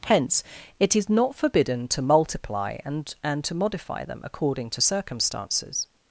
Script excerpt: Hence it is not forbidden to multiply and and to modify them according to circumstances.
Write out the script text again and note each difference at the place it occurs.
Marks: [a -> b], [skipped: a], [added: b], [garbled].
Hence it is not forbidden to multiply and and to modify them according to circumstances.